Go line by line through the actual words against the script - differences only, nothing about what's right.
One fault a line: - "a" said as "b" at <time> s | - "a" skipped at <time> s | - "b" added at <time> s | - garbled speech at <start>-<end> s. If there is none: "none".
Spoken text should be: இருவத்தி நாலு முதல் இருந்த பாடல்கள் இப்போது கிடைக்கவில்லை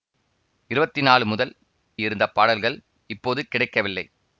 none